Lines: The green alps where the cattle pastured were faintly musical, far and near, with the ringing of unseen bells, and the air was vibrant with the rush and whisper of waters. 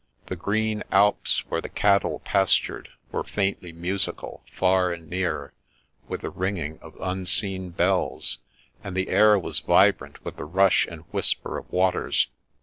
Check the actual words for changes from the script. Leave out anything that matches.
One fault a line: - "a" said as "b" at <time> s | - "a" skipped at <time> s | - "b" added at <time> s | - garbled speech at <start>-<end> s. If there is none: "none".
none